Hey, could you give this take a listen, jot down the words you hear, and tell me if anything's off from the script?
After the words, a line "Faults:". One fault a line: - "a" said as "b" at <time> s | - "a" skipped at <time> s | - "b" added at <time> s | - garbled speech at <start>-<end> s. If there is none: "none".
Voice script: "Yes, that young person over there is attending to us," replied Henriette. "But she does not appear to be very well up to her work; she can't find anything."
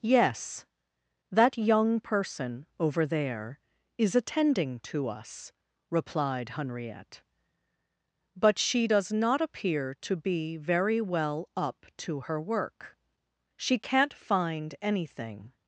"Yes, that young person over there is attending to us," replied Henriette. "But she does not appear to be very well up to her work; she can't find anything."
Faults:
none